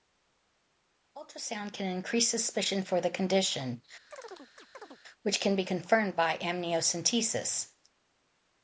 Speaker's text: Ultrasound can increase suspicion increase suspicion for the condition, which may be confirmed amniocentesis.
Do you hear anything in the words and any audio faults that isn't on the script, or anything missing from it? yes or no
yes